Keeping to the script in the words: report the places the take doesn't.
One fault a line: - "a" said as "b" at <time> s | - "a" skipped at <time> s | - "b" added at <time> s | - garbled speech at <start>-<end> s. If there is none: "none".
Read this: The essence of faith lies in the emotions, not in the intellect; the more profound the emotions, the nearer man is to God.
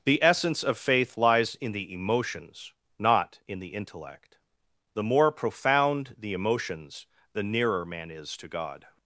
none